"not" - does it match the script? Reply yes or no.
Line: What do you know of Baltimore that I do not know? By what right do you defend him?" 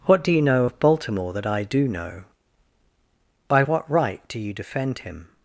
no